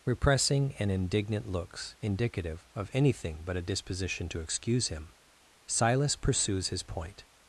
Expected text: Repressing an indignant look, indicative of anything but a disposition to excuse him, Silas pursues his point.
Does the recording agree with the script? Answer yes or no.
no